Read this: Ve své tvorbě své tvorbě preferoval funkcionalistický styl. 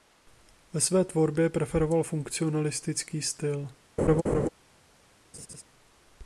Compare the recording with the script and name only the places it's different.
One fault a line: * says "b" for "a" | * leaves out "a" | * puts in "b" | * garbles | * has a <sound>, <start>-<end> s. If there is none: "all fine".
* leaves out "své tvorbě"
* has a laugh, 4.0-4.5 s
* has a laugh, 5.3-5.6 s